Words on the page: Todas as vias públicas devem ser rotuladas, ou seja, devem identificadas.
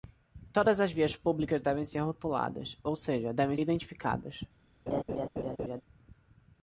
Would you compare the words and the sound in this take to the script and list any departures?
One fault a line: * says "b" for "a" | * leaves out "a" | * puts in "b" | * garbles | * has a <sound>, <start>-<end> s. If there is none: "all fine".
* has a laugh, 4.9-5.8 s